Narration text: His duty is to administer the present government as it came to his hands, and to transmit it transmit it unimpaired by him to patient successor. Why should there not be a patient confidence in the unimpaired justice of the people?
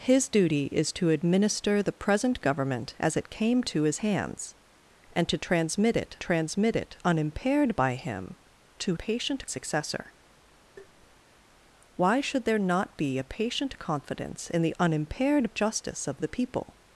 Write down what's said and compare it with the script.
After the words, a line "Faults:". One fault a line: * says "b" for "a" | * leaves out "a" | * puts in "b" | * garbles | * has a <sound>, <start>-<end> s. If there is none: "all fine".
His duty is to administer the present government as it came to his hands, and to transmit it transmit it unimpaired by him to patient successor. Why should there not be a patient confidence in the unimpaired justice of the people?
Faults:
* has a tap, 10.8-11.2 s